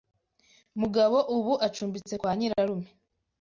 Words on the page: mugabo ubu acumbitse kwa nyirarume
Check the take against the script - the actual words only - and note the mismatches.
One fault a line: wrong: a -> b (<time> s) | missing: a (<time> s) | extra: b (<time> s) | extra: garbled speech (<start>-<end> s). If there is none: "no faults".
no faults